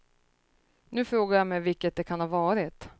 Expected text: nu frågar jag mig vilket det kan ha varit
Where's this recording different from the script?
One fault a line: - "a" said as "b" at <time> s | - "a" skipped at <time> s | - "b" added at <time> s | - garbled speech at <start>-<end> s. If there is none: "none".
none